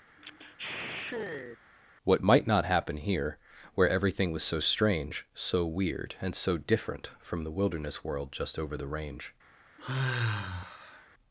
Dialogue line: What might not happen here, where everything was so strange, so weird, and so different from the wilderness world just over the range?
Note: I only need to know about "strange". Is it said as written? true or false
true